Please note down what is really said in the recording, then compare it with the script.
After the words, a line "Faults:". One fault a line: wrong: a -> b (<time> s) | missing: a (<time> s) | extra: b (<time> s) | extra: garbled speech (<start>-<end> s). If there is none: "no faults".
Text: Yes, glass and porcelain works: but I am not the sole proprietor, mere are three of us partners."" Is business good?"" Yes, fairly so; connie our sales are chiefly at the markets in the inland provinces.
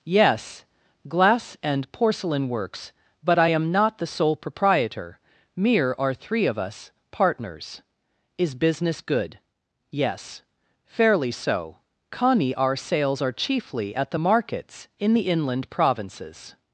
Yes, glass and porcelain works: but I am not the sole proprietor, mere are three of us partners."" Is business good?"" Yes, fairly so; connie our sales are chiefly at the markets in the inland provinces.
Faults:
no faults